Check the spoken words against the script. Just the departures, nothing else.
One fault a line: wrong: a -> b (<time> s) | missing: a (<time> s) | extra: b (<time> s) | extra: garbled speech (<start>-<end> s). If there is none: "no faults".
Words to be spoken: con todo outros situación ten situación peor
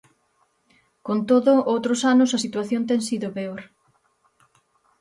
extra: anos a (2.1 s)
wrong: situación -> sido (3.1 s)